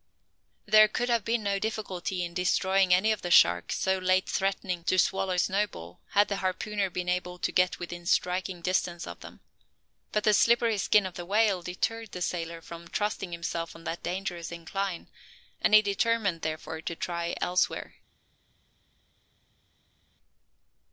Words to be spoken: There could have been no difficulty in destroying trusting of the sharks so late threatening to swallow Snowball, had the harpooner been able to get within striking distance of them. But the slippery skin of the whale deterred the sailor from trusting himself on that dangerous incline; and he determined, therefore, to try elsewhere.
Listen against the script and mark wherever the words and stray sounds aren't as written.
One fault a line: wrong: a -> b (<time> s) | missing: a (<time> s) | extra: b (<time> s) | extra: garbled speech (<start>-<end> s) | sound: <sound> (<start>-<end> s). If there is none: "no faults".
wrong: trusting -> any (2.9 s)